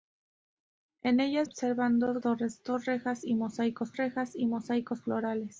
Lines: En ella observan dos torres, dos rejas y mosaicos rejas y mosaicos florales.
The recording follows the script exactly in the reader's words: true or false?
true